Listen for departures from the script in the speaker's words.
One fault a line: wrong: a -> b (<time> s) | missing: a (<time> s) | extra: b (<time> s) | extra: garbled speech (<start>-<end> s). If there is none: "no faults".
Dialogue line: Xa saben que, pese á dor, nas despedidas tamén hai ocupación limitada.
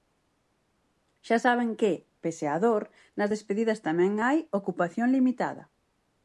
no faults